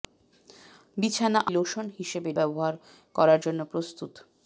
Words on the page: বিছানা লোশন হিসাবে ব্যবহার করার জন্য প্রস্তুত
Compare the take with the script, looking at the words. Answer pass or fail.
pass